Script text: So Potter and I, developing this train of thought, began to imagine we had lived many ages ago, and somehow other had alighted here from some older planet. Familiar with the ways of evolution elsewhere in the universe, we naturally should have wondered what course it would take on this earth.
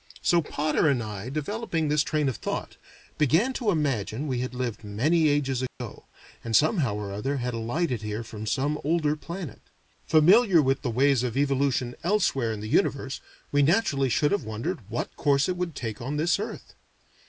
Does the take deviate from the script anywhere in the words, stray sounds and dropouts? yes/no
yes